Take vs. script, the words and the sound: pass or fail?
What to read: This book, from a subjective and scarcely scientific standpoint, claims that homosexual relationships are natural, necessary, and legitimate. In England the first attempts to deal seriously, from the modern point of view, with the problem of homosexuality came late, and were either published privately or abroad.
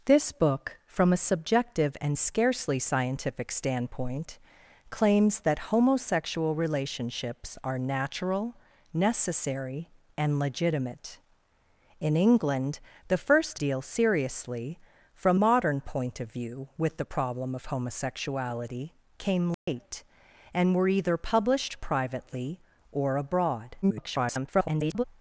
fail